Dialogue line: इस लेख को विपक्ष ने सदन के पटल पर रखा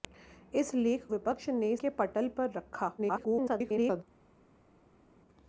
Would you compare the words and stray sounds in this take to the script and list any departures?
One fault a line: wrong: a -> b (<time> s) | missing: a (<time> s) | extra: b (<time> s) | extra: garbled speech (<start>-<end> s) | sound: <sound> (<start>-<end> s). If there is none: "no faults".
missing: को (1.1 s)
missing: सदन (1.7 s)
extra: garbled speech (3.0-4.0 s)